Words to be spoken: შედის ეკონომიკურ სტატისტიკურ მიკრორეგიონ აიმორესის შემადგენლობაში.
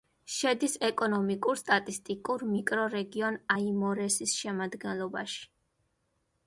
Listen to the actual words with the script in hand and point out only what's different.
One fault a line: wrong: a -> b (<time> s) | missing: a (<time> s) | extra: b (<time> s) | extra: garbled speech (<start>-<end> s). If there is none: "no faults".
no faults